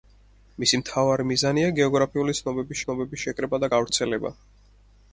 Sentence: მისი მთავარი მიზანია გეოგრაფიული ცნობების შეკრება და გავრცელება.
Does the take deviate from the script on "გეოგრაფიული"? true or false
false